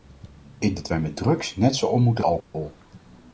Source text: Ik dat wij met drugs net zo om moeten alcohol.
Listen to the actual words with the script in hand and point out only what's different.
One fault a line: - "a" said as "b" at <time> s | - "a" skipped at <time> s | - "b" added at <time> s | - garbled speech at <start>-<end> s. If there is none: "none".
none